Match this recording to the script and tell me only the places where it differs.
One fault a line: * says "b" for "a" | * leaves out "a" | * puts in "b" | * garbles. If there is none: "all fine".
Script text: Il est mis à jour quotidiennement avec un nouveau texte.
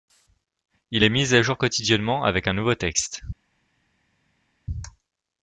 all fine